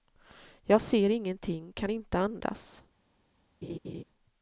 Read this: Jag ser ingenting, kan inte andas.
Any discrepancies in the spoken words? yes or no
no